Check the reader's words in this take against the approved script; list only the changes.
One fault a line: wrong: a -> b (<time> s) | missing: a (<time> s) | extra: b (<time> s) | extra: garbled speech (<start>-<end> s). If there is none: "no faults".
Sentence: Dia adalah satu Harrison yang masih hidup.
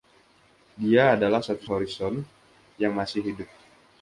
no faults